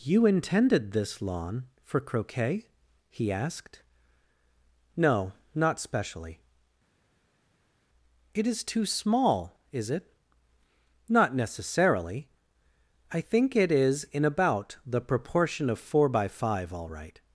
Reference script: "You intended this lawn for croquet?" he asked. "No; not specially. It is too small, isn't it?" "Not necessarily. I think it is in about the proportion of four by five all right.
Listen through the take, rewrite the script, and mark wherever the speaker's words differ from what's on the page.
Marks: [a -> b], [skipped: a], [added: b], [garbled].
"You intended this lawn for croquet?" he asked. "No; not specially. It is too small, [isn't -> is] it?" "Not necessarily. I think it is in about the proportion of four by five all right.